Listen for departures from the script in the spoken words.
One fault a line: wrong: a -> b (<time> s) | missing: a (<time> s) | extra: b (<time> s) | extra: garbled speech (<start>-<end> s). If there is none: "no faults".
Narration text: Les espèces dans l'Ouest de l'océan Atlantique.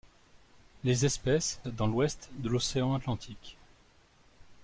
no faults